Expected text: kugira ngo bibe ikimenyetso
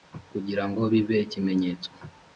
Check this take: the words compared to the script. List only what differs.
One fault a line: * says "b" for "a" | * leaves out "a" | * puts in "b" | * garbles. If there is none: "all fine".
all fine